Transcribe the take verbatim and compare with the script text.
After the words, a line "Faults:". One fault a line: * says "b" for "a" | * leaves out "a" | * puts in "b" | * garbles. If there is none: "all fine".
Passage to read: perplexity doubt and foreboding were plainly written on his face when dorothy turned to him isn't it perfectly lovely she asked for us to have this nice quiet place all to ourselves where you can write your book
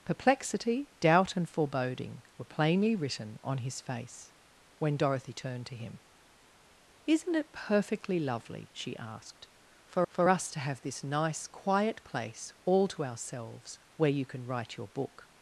perplexity doubt and foreboding were plainly written on his face when dorothy turned to him isn't it perfectly lovely she asked for for us to have this nice quiet place all to ourselves where you can write your book
Faults:
* puts in "for"